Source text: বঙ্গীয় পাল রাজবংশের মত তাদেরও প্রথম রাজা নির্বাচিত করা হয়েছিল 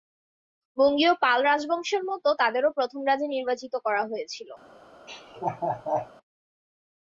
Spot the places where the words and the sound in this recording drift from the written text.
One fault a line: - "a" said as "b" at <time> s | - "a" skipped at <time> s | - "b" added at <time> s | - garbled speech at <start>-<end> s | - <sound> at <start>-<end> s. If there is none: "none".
- laugh at 5.1-6.1 s